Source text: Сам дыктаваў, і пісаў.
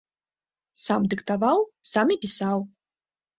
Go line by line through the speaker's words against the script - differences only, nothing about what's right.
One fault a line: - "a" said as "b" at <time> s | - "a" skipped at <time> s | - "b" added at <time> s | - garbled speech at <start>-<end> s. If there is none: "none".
- "сам" added at 1.9 s